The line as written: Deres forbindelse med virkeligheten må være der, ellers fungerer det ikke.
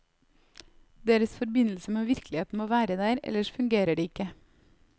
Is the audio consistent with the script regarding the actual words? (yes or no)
yes